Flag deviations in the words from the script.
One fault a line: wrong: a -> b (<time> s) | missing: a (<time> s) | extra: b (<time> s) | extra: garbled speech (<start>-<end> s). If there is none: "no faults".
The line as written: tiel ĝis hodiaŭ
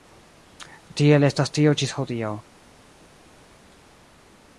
extra: estas tio (1.3 s)